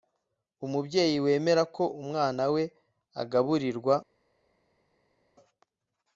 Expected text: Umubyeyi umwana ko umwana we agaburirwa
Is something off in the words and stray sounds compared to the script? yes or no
yes